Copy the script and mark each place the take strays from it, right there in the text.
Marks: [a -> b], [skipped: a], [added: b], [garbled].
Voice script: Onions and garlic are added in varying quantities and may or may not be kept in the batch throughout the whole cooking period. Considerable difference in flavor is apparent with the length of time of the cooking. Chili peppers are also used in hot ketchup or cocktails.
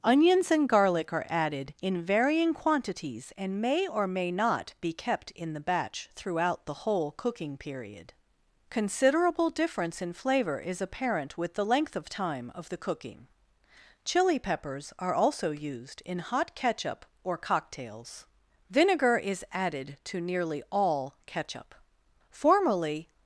Onions and garlic are added in varying quantities and may or may not be kept in the batch throughout the whole cooking period. Considerable difference in flavor is apparent with the length of time of the cooking. Chili peppers are also used in hot ketchup or cocktails. [added: Vinegar is added to nearly all ketchup Formerly]